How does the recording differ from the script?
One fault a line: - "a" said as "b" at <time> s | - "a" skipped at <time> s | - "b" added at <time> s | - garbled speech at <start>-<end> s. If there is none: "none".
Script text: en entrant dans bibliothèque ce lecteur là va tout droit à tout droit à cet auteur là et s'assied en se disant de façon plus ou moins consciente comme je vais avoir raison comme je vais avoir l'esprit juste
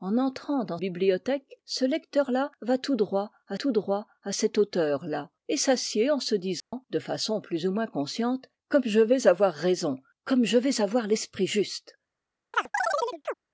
none